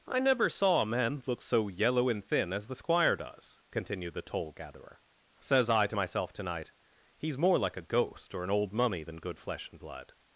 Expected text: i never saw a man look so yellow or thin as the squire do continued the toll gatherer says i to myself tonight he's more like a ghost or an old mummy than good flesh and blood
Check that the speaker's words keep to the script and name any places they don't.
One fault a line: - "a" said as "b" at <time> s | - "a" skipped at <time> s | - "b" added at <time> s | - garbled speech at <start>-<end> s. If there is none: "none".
- "or" said as "and" at 2.1 s
- "do" said as "does" at 3.1 s